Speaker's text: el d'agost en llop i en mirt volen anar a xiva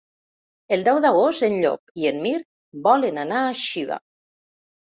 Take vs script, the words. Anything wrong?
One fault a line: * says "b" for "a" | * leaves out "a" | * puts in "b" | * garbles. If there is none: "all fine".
* puts in "deu"